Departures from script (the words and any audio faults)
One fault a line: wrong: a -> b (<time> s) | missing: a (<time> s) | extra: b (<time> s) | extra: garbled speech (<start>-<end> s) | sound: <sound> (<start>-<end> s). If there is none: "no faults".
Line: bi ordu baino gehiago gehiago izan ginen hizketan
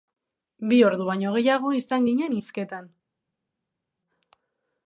missing: gehiago (1.7 s)